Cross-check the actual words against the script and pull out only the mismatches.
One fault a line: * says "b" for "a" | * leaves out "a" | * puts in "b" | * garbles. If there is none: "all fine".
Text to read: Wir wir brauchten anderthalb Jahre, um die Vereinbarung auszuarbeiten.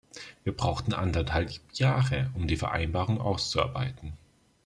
* leaves out "wir"